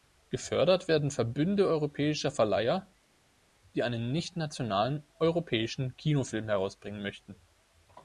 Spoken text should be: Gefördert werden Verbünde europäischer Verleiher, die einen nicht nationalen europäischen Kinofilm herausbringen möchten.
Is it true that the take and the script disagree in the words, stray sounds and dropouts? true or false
false